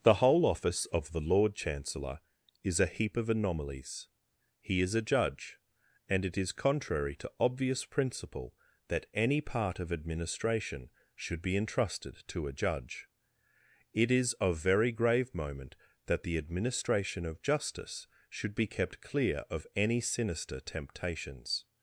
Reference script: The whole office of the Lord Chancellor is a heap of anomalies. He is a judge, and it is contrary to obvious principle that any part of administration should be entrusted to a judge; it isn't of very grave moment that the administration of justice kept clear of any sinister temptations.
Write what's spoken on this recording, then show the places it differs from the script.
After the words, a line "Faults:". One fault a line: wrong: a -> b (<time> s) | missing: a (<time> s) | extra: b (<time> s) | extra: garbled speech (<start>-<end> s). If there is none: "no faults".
The whole office of the Lord Chancellor is a heap of anomalies. He is a judge, and it is contrary to obvious principle that any part of administration should be entrusted to a judge; it is of very grave moment that the administration of justice should be kept clear of any sinister temptations.
Faults:
wrong: isn't -> is (14.1 s)
extra: should be (18.3 s)